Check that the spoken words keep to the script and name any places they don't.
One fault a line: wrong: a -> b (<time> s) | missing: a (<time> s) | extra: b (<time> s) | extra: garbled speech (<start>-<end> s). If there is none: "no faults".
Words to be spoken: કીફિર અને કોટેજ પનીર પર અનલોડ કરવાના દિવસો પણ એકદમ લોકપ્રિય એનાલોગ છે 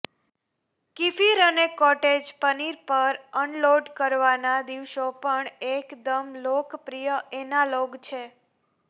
no faults